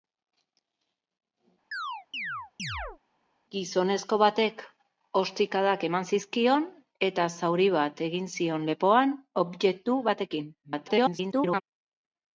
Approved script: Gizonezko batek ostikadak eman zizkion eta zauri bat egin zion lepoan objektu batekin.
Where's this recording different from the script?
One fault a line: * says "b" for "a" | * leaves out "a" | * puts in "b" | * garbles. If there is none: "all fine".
* garbles